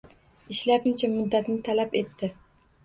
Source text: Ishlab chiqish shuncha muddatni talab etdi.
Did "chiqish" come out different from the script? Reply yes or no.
yes